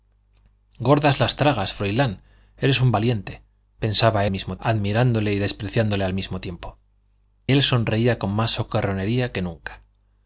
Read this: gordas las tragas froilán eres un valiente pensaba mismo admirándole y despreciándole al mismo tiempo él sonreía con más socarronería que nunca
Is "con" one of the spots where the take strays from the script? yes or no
no